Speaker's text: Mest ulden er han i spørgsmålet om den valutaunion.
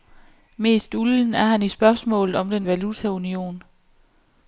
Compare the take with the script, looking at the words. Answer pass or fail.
pass